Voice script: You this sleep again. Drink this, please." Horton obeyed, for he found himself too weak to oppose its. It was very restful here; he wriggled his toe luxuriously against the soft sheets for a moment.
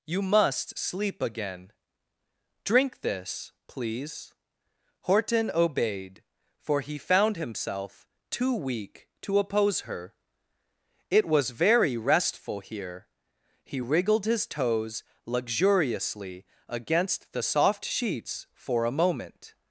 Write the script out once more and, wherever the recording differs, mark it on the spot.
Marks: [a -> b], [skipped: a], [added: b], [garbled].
You [this -> must] sleep again. Drink this, please." Horton obeyed, for he found himself too weak to oppose [its. -> her] It was very restful here; he wriggled his [toe -> toes] luxuriously against the soft sheets for a moment.